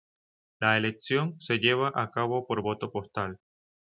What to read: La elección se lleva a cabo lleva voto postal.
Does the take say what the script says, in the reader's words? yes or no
no